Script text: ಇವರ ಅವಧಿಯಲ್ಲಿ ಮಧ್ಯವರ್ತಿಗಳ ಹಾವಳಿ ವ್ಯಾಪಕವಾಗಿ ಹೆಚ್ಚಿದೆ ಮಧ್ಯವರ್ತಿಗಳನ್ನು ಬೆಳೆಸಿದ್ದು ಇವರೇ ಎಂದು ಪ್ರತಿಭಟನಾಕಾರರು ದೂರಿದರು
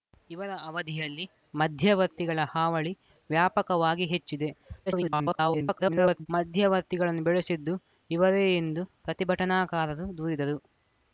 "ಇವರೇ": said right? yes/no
yes